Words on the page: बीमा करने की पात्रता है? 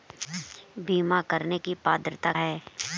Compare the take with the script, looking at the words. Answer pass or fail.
pass